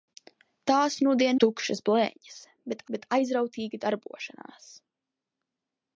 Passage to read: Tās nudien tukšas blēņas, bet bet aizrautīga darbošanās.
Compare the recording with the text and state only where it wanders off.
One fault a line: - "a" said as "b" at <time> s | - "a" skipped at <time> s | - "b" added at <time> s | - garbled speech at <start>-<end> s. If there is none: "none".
none